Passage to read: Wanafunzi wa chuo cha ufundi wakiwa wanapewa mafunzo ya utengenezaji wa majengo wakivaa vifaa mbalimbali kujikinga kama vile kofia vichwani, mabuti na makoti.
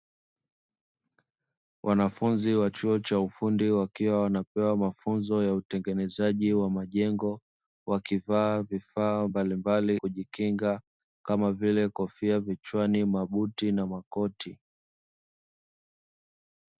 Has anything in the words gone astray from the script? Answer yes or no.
no